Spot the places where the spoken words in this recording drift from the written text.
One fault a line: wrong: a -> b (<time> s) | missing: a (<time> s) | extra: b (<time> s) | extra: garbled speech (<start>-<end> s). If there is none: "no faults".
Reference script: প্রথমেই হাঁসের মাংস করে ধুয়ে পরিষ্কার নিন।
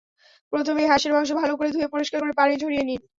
extra: ভালো (1.4 s)
extra: করে পানি ঝরিয়ে (2.2 s)